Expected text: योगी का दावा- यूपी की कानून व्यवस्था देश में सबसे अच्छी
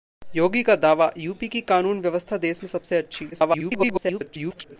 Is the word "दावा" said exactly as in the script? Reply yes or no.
yes